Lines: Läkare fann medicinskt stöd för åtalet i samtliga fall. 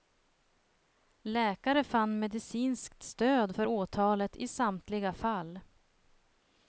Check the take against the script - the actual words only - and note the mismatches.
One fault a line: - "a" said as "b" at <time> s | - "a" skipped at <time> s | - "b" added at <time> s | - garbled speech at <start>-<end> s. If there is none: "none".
none